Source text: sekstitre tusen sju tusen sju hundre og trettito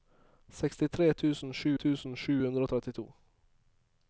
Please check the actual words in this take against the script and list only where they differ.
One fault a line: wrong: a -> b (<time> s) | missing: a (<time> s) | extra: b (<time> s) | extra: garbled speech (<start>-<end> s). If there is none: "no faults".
no faults